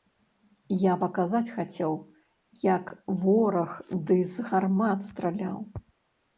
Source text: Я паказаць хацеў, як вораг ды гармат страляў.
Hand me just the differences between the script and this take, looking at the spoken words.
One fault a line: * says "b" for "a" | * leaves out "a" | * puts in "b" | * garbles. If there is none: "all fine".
* puts in "з"